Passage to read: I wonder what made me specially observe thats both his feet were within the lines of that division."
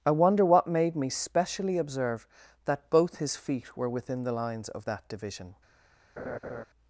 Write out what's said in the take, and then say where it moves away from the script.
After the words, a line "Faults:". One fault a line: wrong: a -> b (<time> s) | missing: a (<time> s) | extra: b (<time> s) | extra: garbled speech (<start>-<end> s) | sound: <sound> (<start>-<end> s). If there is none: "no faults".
I wonder what made me specially observe that both his feet were within the lines of that division."
Faults:
wrong: thats -> that (2.6 s)
sound: laugh (6.2-6.6 s)